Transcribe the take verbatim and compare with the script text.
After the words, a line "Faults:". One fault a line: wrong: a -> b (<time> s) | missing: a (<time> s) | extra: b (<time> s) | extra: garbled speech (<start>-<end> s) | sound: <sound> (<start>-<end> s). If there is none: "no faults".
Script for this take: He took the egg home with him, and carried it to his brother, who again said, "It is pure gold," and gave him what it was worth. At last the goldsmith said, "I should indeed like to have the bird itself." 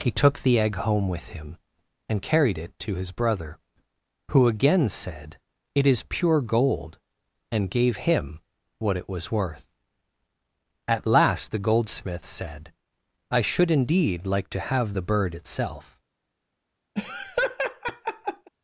He took the egg home with him, and carried it to his brother, who again said, "It is pure gold," and gave him what it was worth. At last the goldsmith said, "I should indeed like to have the bird itself."
Faults:
sound: laugh (17.0-18.5 s)